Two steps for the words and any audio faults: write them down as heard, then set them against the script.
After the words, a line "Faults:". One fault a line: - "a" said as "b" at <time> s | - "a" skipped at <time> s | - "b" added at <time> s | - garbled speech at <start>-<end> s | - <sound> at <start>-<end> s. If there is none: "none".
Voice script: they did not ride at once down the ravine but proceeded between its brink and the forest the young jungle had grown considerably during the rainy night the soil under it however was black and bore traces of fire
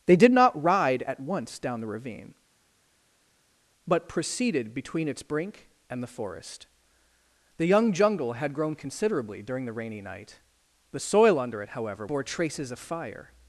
they did not ride at once down the ravine but proceeded between its brink and the forest the young jungle had grown considerably during the rainy night the soil under it however bore traces of fire
Faults:
- "was black and" skipped at 12.1 s